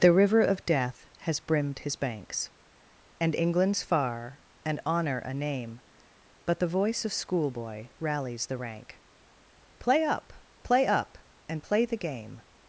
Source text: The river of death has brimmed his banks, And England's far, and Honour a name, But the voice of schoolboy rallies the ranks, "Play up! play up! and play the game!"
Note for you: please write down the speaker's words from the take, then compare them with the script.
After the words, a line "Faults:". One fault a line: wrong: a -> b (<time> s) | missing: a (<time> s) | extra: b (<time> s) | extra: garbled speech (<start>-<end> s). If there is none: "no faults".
The river of death has brimmed his banks, And England's far, and Honour a name, But the voice of schoolboy rallies the rank, "Play up! play up! and play the game!"
Faults:
wrong: ranks -> rank (8.6 s)